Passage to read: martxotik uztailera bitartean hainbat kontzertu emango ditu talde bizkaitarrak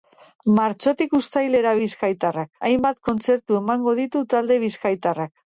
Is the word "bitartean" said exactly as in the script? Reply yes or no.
no